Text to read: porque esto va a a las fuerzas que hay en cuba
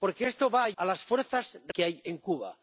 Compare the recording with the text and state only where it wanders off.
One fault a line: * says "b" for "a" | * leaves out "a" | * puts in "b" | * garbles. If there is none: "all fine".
all fine